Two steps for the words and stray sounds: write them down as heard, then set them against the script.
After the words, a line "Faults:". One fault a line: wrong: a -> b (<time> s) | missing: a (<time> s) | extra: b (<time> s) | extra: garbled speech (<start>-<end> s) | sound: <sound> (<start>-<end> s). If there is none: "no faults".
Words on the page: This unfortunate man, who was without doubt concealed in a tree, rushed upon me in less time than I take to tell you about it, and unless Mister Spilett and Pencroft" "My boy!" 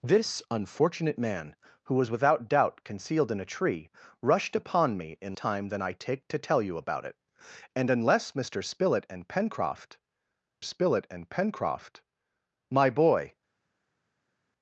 This unfortunate man, who was without doubt concealed in a tree, rushed upon me in time than I take to tell you about it, and unless Mister Spilett and Pencroft Spilett and Pencroft" "My boy!"
Faults:
missing: less (5.3 s)
extra: Spilett and Pencroft (10.6 s)